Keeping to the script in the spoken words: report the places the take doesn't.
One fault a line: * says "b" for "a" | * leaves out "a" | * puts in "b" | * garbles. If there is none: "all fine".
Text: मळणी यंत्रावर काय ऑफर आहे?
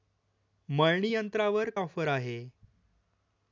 * leaves out "काय"